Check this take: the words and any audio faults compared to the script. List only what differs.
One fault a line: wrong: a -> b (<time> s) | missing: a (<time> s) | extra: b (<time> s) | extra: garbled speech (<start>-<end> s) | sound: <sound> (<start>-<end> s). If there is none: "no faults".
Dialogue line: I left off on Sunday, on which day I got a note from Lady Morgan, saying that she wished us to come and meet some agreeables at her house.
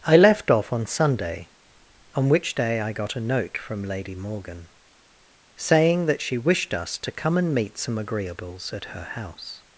no faults